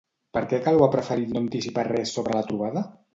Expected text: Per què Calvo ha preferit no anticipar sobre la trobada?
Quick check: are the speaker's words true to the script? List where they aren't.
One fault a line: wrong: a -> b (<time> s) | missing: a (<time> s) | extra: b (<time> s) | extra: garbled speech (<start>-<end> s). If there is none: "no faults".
extra: res (1.9 s)